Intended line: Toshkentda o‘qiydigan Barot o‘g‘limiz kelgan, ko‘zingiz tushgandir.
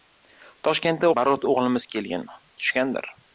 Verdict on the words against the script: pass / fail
fail